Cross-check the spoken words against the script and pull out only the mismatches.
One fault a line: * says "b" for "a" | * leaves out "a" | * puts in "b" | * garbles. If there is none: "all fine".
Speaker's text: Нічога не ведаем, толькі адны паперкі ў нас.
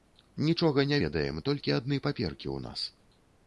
all fine